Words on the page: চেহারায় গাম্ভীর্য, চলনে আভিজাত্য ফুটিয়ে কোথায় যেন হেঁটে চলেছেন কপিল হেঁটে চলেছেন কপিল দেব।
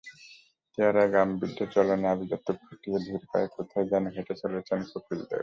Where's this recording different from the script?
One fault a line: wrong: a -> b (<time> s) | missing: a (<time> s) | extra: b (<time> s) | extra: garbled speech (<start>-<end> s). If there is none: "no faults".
extra: ধীর পায়ে (3.0 s)
missing: হেঁটে চলেছেন কপিল (5.2 s)